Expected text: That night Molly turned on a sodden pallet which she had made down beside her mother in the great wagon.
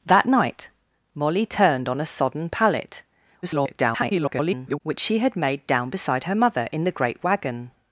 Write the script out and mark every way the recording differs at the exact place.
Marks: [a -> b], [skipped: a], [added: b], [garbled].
That night Molly turned on a sodden pallet [garbled] which she had made down beside her mother in the great wagon.